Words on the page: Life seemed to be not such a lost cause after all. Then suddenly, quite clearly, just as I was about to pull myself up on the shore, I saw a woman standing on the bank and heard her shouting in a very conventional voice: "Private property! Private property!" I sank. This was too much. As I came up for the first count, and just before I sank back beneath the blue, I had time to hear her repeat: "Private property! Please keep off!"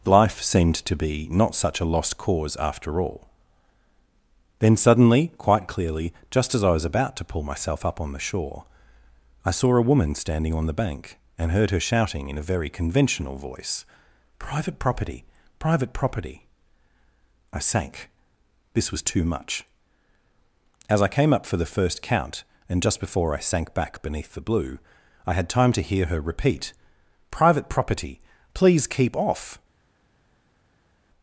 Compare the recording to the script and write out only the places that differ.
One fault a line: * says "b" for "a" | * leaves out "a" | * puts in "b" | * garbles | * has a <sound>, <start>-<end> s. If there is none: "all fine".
all fine